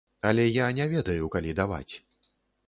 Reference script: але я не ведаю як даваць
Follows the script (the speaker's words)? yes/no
no